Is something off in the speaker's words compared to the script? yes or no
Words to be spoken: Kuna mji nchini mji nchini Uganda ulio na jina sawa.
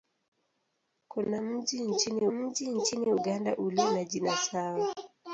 no